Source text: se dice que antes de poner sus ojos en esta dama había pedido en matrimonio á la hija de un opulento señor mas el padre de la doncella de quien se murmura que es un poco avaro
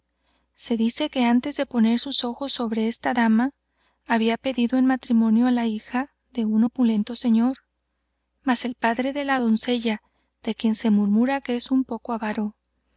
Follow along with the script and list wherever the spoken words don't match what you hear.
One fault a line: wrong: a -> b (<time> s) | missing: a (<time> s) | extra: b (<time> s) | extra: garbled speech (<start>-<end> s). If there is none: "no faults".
wrong: en -> sobre (2.5 s)